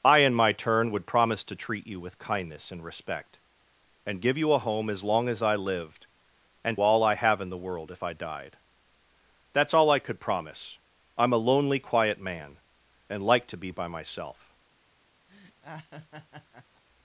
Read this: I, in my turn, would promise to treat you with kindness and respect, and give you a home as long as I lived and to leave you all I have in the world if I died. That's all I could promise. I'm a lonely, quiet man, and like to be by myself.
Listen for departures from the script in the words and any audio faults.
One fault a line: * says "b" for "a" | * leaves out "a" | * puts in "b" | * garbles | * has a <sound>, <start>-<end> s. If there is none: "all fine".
* leaves out "to leave you"
* has a laugh, 15.3-16.8 s